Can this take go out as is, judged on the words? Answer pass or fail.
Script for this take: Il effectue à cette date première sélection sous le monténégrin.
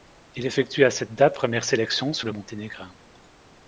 pass